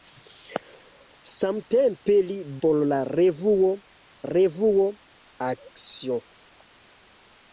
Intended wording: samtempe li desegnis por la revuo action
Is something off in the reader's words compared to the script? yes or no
yes